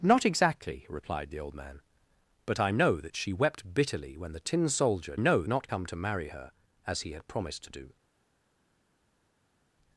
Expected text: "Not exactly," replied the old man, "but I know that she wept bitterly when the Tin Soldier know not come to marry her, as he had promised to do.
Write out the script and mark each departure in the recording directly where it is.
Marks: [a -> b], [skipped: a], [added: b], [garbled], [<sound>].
"Not exactly," replied the old man, "but I know that she wept bitterly when the Tin Soldier know not come to marry her, as he had promised to do.